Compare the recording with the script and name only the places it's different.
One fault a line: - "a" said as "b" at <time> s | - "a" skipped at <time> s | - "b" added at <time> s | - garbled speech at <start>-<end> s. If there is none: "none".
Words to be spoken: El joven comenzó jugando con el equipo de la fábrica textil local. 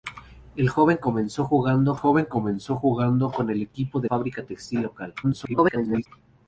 - "joven comenzó jugando" added at 1.9 s
- "la" skipped at 4.1 s
- garbled speech at 5.2-6.1 s